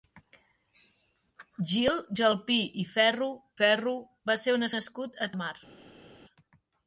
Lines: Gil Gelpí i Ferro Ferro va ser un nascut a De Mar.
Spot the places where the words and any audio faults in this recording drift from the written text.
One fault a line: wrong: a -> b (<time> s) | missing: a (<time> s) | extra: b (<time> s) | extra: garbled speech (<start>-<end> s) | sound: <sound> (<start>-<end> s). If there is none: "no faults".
no faults